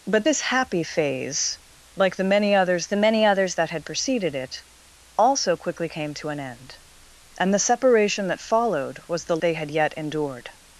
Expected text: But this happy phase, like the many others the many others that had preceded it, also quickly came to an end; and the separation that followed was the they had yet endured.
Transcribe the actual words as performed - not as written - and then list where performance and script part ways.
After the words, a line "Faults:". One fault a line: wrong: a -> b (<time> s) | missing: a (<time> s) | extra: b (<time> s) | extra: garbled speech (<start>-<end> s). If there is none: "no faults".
But this happy phase, like the many others the many others that had preceded it, also quickly came to an end; and the separation that followed was the they had yet endured.
Faults:
no faults